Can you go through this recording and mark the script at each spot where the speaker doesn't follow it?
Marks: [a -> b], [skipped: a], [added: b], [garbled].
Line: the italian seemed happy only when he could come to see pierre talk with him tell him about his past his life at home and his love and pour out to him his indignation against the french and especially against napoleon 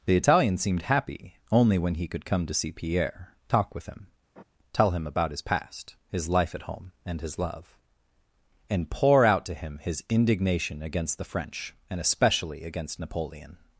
the italian seemed happy only when he could come to see pierre talk with him tell him about his past his life at home and his love and pour out to him his indignation against the french and especially against napoleon